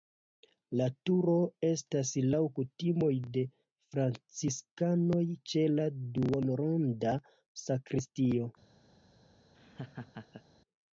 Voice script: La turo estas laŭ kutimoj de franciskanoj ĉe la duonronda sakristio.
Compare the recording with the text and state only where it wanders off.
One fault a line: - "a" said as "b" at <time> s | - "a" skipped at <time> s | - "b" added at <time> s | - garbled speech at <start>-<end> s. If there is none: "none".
none